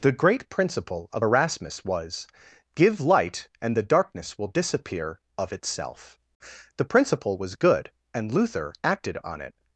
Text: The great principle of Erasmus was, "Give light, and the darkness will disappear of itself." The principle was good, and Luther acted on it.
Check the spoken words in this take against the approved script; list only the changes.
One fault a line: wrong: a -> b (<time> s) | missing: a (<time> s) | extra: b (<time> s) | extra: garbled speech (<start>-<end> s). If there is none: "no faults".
no faults